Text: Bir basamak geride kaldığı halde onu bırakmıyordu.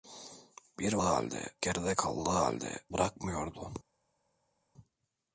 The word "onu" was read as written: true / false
false